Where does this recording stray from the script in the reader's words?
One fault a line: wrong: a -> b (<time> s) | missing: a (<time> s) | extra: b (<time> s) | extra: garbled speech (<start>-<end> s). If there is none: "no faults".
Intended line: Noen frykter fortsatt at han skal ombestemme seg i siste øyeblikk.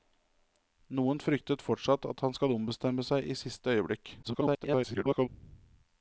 extra: garbled speech (4.2-5.3 s)